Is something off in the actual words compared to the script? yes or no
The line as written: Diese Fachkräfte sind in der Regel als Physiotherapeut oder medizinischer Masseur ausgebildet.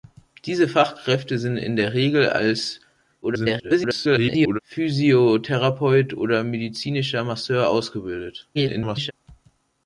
yes